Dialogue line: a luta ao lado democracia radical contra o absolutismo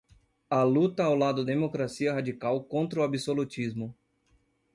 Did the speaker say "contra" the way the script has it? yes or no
yes